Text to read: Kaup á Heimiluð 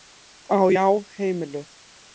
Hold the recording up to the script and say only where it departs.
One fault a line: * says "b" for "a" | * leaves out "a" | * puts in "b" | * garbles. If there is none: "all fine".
* puts in "Já"